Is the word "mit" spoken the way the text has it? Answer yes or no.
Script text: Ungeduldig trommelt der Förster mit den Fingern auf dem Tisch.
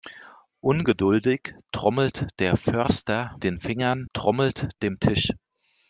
no